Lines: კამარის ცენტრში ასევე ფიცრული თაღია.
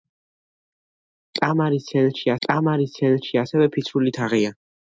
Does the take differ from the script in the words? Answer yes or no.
yes